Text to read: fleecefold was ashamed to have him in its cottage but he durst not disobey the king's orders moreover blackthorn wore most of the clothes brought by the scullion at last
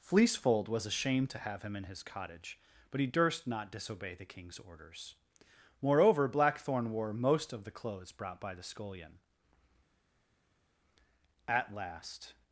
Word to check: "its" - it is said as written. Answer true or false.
false